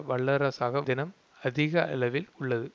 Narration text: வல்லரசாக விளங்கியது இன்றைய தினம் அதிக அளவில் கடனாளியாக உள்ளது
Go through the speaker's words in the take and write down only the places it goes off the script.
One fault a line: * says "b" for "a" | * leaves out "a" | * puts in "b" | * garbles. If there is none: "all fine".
* leaves out "விளங்கியது இன்றைய"
* leaves out "கடனாளியாக"